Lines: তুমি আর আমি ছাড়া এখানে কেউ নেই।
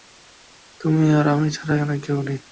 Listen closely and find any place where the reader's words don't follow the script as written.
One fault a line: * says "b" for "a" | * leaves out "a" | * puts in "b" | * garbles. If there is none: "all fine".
all fine